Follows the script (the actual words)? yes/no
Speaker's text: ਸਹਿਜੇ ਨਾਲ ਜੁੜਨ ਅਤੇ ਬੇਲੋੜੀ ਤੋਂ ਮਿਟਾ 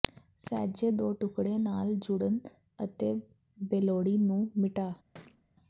no